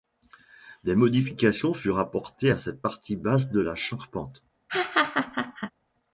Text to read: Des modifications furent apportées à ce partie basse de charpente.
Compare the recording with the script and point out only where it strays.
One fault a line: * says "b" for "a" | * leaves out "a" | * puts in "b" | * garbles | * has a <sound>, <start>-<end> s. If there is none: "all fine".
* says "cette" for "ce"
* puts in "la"
* has a laugh, 4.7-5.7 s